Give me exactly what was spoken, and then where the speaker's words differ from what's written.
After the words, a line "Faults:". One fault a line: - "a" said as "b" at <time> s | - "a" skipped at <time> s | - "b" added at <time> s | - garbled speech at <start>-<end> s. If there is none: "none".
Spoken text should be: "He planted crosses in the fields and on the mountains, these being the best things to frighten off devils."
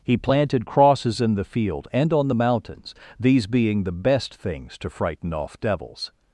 "He planted crosses in the field and on the mountains, these being the best things to frighten off devils."
Faults:
- "fields" said as "field" at 1.4 s